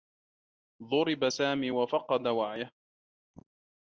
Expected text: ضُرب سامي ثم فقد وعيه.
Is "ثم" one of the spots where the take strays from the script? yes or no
yes